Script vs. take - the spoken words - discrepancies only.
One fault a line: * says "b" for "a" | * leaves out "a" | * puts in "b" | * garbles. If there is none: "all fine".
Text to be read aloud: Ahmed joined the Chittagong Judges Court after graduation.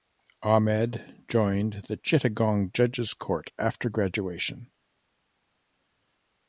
all fine